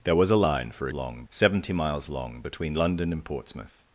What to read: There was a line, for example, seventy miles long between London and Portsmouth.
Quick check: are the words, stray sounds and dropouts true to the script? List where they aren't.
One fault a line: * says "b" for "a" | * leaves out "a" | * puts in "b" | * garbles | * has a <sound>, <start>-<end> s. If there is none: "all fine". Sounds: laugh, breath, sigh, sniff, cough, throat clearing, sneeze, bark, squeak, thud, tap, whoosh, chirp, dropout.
* says "long" for "example"